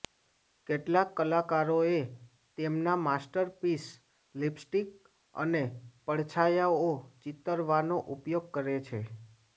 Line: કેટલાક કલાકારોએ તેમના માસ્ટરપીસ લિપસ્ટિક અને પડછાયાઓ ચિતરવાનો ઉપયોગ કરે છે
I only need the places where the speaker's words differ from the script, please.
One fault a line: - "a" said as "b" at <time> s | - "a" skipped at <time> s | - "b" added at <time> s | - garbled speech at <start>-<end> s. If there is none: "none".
none